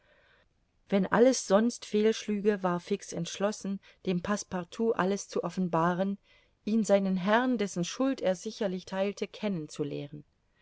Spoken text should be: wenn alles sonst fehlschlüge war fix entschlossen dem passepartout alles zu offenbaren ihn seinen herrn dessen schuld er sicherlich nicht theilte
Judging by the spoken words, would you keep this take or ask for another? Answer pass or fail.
fail